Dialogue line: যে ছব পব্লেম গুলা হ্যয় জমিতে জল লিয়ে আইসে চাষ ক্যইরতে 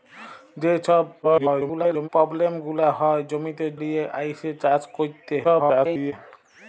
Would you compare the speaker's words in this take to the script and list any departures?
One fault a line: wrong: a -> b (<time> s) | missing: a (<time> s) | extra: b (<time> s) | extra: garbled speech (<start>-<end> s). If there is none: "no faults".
extra: garbled speech (1.2-2.1 s)
missing: জল (3.6 s)
extra: garbled speech (5.4-6.1 s)